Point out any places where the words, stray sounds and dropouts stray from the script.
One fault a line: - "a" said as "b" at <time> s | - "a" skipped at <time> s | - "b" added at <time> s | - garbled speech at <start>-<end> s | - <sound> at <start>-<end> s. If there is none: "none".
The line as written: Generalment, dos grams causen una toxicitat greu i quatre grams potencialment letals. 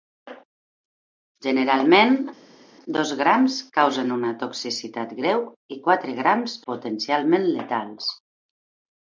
none